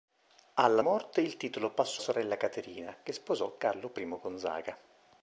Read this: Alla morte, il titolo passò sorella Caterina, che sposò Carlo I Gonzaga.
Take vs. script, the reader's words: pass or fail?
pass